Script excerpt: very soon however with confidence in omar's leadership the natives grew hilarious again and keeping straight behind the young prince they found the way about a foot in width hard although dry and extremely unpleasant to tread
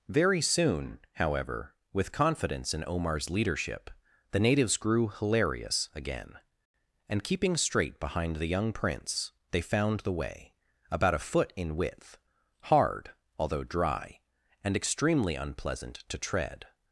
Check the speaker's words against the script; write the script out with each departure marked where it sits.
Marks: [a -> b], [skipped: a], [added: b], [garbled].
very soon however with confidence in omar's leadership the natives grew hilarious again and keeping straight behind the young prince they found the way about a foot in width hard although dry and extremely unpleasant to tread